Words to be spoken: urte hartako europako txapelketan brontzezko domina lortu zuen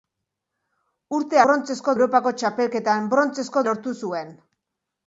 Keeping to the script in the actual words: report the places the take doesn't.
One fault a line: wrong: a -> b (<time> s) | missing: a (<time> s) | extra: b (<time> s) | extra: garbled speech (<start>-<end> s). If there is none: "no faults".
wrong: hartako -> brontzezko (1.5 s)
missing: domina (3.6 s)